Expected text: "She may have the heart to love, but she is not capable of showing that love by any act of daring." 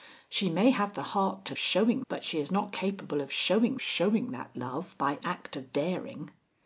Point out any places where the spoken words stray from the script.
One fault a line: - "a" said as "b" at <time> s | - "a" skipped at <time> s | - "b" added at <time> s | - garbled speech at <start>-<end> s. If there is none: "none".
- "love" said as "showing" at 1.6 s
- "showing" added at 3.8 s
- "any" skipped at 5.2 s